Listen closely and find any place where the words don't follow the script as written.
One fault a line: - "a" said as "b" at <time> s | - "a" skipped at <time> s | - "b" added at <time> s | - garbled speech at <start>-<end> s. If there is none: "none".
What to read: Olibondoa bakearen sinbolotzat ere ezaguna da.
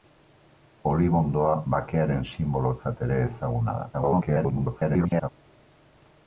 - garbled speech at 3.9-5.3 s